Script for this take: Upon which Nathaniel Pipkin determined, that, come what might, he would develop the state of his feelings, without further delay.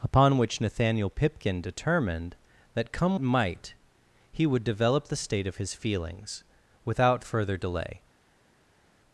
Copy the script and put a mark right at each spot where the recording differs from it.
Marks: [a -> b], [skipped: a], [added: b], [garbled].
Upon which Nathaniel Pipkin determined, that, come [skipped: what] might, he would develop the state of his feelings, without further delay.